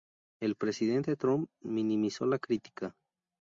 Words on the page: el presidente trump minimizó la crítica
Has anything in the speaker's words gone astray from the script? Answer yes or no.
no